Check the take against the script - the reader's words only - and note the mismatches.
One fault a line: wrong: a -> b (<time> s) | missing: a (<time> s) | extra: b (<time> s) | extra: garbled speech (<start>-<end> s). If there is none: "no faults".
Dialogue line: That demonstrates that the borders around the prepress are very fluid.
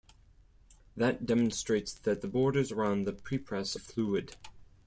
missing: are very (3.8 s)